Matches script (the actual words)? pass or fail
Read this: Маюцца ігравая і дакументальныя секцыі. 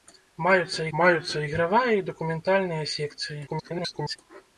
fail